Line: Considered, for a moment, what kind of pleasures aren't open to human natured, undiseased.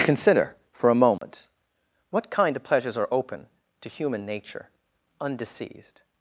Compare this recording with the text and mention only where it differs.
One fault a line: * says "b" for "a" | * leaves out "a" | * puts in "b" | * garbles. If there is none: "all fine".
* says "Consider" for "Considered"
* says "are" for "aren't"
* says "nature" for "natured"